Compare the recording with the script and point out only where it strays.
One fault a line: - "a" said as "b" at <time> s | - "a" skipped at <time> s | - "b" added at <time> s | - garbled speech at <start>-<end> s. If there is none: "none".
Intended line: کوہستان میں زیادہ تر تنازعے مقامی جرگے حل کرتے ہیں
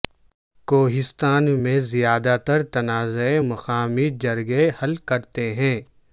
none